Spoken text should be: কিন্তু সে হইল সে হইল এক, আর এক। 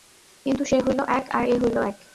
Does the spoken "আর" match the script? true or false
false